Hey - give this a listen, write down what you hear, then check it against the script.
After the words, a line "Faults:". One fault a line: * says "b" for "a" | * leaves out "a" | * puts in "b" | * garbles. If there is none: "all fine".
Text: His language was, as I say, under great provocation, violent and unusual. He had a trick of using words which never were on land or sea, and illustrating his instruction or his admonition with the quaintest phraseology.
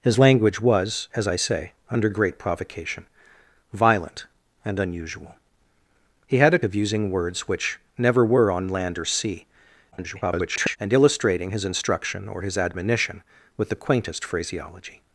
His language was, as I say, under great provocation, violent and unusual. He had a of using words which never were on land or sea, [garbled] and illustrating his instruction or his admonition with the quaintest phraseology.
Faults:
* leaves out "trick"
* garbles